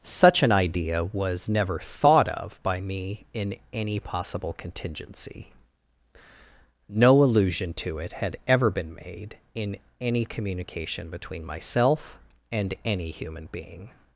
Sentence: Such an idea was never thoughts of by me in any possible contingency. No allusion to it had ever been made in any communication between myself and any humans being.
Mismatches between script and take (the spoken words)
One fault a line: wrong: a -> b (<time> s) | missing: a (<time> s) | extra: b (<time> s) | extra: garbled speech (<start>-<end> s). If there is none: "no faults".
wrong: thoughts -> thought (1.8 s)
wrong: humans -> human (13.1 s)